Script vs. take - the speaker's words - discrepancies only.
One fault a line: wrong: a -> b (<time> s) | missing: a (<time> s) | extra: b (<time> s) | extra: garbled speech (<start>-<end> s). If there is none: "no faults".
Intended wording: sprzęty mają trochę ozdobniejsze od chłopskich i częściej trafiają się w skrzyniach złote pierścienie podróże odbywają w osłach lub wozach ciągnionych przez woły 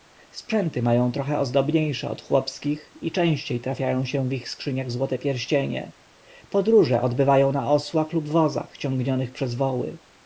extra: ich (4.3 s)
wrong: w -> na (7.5 s)